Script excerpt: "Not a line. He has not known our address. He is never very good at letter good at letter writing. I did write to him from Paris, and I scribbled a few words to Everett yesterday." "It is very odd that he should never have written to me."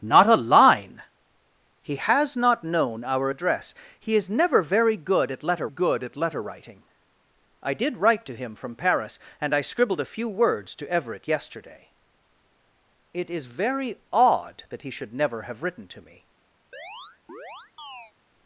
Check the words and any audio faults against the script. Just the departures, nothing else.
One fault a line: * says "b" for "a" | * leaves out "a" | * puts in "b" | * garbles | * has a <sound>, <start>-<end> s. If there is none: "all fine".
* has a chirp, 16.7-18.1 s